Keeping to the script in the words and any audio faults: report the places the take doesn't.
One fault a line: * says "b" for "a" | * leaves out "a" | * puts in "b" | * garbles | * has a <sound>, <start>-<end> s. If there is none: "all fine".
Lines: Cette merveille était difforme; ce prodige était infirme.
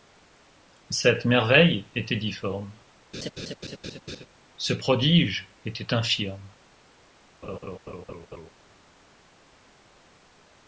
* has a laugh, 3.1-4.3 s
* has a laugh, 7.4-8.5 s